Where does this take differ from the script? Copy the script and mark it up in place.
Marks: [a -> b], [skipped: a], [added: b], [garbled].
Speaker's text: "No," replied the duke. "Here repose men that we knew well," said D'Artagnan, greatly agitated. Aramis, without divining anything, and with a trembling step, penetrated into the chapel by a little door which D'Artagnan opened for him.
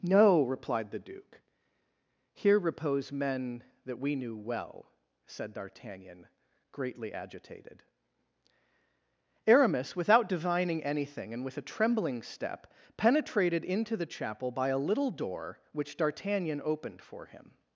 "No," replied the duke. "Here repose men that we knew well," said D'Artagnan, greatly agitated. Aramis, without divining anything, and with a trembling step, penetrated into the chapel by a little door which D'Artagnan opened for him.